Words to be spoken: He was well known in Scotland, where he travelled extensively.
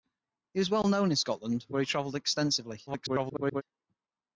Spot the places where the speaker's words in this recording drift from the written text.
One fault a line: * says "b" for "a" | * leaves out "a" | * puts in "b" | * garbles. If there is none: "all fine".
* garbles